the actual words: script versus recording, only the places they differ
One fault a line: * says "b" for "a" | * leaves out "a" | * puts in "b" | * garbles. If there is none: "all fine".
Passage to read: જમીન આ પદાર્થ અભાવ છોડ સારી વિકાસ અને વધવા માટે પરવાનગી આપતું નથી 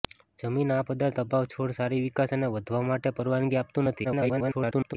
* garbles